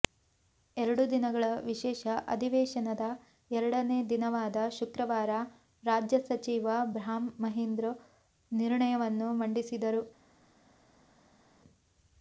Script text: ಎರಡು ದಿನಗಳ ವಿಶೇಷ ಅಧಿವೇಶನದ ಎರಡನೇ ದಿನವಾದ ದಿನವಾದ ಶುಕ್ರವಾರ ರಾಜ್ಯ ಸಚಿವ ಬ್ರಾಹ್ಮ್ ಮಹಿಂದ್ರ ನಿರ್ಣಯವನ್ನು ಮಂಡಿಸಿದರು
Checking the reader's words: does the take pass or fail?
fail